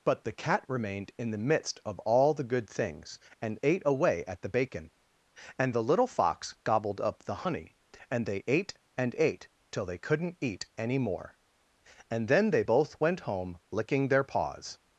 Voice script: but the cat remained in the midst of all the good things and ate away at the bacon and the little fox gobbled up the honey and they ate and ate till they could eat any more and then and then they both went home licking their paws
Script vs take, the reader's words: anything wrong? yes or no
yes